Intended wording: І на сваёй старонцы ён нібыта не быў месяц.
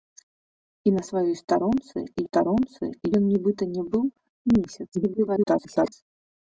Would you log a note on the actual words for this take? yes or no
yes